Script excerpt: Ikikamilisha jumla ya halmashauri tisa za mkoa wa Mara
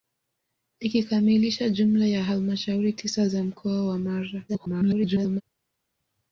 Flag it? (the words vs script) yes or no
yes